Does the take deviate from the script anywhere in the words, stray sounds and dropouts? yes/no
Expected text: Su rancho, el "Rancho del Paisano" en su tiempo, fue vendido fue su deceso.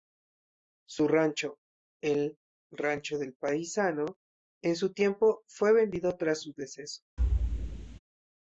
yes